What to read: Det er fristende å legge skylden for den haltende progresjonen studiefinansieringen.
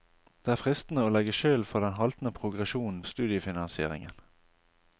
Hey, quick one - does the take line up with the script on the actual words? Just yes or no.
yes